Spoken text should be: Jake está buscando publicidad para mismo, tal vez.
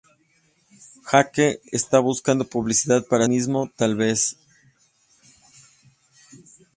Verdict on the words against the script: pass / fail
pass